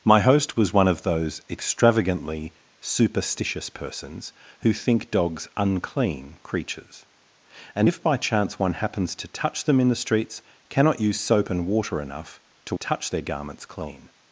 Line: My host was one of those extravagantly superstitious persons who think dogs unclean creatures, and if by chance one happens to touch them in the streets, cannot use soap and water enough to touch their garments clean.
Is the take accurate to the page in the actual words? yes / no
yes